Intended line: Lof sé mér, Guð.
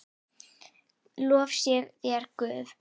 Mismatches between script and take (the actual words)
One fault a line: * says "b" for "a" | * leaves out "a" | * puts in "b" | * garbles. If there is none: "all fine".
* says "þér" for "mér"